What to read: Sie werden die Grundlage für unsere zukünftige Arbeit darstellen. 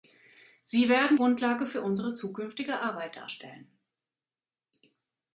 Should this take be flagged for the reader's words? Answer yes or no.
yes